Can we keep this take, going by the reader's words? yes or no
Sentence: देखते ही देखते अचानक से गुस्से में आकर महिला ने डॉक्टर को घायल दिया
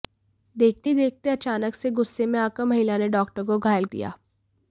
yes